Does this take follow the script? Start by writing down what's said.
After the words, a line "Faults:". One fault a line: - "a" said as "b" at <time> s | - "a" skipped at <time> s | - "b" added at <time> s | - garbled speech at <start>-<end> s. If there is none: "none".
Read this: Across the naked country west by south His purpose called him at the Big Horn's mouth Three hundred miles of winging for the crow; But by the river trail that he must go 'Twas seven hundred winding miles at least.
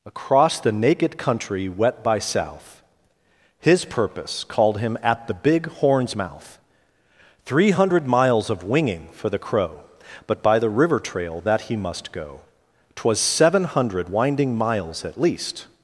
Across the naked country wet by south His purpose called him at the Big Horn's mouth Three hundred miles of winging for the crow; But by the river trail that he must go 'Twas seven hundred winding miles at least.
Faults:
- "west" said as "wet" at 1.7 s